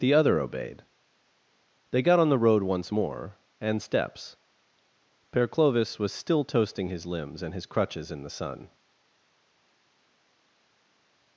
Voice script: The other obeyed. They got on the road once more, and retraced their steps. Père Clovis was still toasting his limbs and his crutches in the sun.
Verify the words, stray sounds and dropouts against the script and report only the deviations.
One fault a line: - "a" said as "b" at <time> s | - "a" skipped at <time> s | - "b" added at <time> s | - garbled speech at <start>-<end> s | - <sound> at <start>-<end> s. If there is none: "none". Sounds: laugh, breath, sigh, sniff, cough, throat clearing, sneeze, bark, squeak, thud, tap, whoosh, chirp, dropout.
- "retraced their" skipped at 3.8 s